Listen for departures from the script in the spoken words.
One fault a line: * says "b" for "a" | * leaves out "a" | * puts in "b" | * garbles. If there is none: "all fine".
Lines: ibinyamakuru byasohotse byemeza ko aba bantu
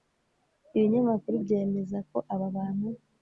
* leaves out "byasohotse"